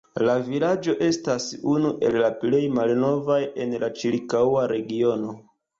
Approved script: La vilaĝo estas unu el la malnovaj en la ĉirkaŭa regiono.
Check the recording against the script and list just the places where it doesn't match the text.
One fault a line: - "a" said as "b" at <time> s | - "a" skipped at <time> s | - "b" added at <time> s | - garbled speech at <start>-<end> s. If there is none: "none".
- "plej" added at 2.4 s